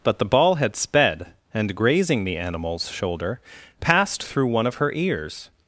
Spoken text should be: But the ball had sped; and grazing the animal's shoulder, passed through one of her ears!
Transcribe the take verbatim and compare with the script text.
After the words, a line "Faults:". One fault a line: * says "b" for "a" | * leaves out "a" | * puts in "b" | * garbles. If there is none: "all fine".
But the ball had sped; and grazing the animal's shoulder, passed through one of her ears!
Faults:
all fine